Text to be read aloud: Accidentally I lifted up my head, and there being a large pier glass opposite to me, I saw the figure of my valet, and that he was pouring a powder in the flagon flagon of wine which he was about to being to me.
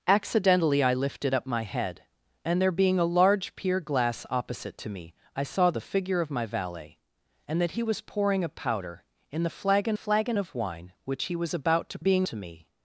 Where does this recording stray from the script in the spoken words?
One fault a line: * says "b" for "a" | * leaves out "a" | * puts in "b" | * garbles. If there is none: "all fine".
all fine